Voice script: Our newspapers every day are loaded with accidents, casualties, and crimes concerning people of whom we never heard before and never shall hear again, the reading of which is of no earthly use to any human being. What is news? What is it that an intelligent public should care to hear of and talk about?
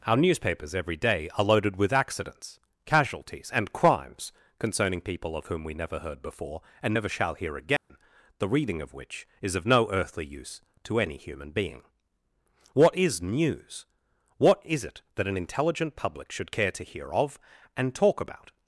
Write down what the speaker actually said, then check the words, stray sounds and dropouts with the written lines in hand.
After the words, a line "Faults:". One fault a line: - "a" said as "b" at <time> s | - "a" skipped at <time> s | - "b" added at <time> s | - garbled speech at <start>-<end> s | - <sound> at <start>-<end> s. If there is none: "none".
Our newspapers every day are loaded with accidents, casualties, and crimes concerning people of whom we never heard before and never shall hear again, the reading of which is of no earthly use to any human being. What is news? What is it that an intelligent public should care to hear of and talk about?
Faults:
- dropout at 7.8-7.9 s